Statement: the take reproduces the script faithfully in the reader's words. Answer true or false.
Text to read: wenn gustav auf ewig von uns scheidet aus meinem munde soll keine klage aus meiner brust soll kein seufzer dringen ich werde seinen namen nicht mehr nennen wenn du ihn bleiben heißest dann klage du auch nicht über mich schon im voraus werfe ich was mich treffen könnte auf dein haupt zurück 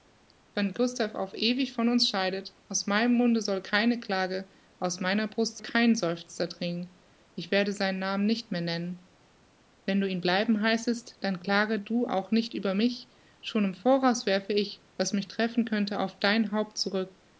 false